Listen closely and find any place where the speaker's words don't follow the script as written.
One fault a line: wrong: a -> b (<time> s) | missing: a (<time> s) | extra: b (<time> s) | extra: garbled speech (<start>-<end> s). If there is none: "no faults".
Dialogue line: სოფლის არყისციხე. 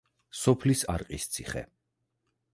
no faults